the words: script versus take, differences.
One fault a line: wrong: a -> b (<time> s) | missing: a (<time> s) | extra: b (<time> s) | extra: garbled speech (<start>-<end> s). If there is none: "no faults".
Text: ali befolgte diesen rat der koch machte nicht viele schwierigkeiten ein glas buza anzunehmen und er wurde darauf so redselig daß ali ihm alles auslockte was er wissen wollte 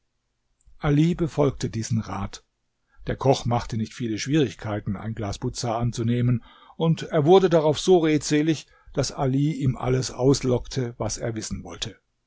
no faults